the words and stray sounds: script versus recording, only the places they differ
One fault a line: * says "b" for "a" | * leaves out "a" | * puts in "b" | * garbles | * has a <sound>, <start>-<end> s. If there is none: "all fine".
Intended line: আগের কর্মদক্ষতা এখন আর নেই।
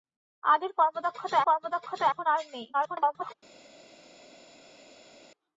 * puts in "কর্মদক্ষতা"
* garbles